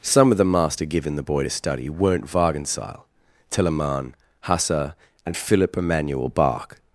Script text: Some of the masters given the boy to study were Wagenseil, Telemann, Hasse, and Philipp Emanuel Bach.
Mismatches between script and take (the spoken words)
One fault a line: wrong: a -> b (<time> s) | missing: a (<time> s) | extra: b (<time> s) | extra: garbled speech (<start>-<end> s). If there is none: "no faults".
wrong: masters -> master (0.5 s)
wrong: were -> weren't (1.9 s)